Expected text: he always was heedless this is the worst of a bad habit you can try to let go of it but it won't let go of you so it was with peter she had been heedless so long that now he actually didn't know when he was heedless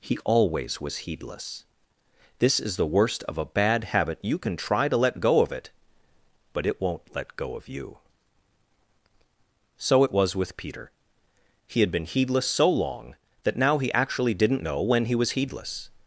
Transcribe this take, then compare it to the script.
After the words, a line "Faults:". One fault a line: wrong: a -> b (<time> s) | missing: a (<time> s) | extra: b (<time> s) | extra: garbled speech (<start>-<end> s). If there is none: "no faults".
he always was heedless this is the worst of a bad habit you can try to let go of it but it won't let go of you so it was with peter he had been heedless so long that now he actually didn't know when he was heedless
Faults:
wrong: she -> he (11.7 s)